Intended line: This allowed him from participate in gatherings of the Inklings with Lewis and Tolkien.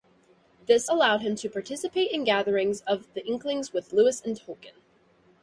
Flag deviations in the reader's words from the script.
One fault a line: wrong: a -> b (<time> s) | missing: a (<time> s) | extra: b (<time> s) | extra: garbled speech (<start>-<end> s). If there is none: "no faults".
wrong: from -> to (1.4 s)